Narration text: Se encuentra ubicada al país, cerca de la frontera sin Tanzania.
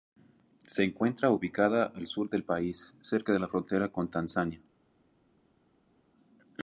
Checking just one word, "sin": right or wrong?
wrong